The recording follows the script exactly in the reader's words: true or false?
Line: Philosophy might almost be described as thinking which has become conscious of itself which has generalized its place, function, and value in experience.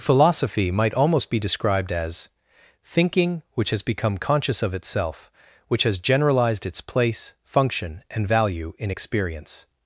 true